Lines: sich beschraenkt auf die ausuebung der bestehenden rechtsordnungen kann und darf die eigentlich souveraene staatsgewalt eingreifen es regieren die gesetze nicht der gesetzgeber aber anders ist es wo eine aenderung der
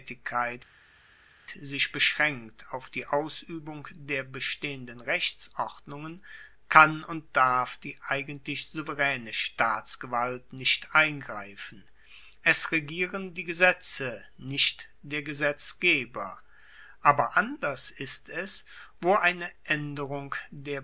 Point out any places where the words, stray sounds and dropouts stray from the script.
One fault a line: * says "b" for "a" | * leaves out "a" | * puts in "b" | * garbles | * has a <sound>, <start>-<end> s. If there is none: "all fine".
* puts in "nicht"